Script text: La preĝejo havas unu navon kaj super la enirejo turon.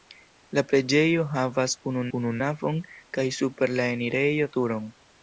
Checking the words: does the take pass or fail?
fail